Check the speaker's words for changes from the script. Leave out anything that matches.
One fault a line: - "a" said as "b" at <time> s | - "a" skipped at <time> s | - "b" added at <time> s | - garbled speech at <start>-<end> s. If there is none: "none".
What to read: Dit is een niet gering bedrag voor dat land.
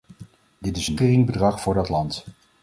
- "niet" skipped at 1.0 s